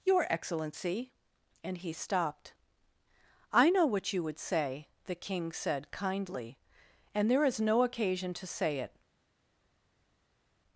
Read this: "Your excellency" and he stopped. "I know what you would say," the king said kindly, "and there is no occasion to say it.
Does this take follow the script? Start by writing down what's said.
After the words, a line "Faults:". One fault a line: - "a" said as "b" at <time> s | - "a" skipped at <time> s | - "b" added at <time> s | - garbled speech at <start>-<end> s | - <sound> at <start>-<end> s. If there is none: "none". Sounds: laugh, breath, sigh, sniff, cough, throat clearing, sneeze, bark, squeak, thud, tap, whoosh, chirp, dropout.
"Your excellency" and he stopped. "I know what you would say," the king said kindly, "and there is no occasion to say it.
Faults:
none